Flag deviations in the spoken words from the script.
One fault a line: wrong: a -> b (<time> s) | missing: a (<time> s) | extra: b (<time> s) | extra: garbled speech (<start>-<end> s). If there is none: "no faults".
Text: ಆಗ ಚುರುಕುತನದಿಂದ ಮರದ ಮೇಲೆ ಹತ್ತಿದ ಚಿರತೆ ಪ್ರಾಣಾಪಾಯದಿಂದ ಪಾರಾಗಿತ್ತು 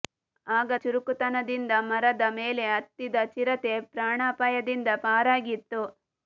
no faults